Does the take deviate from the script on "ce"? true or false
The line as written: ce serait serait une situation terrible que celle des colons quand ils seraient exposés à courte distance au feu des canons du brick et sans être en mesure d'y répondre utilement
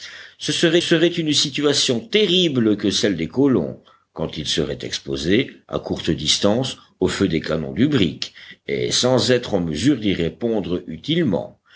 false